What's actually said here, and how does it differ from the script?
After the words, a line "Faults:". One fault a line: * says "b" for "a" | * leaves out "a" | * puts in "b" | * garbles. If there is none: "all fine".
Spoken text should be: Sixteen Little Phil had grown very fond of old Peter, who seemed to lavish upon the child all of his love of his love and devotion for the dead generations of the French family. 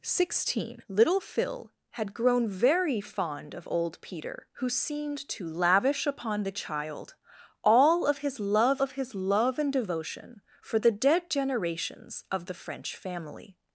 Sixteen Little Phil had grown very fond of old Peter, who seemed to lavish upon the child all of his love of his love and devotion for the dead generations of the French family.
Faults:
all fine